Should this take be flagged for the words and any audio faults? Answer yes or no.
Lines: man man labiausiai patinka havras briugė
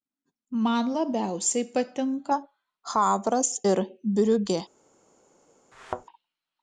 yes